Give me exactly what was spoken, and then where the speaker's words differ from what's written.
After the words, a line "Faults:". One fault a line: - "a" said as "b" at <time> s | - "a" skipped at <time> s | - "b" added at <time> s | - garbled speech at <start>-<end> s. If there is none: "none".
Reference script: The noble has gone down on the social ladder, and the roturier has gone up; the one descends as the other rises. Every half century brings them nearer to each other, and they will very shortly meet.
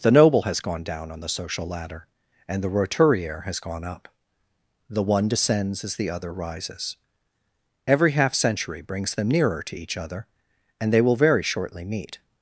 The noble has gone down on the social ladder, and the roturier has gone up; the one descends as the other rises. Every half century brings them nearer to each other, and they will very shortly meet.
Faults:
none